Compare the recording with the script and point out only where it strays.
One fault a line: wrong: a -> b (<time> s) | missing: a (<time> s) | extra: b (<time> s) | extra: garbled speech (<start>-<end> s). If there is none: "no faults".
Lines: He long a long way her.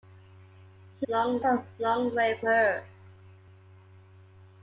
no faults